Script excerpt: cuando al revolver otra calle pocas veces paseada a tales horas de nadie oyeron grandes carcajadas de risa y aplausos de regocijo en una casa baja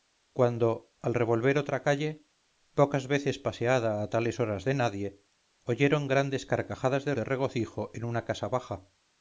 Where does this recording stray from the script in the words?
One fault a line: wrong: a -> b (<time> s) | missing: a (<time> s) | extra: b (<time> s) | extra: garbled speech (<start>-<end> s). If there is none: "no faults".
missing: risa y aplausos (7.1 s)